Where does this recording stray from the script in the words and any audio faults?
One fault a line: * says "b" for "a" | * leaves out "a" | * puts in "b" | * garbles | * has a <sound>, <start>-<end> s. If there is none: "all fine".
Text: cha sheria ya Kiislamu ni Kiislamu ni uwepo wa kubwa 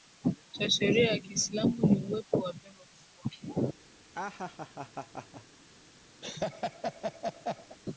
* leaves out "Kiislamu ni"
* puts in "pengo"
* has a laugh, 4.1-5.4 s
* has a laugh, 6.2-7.8 s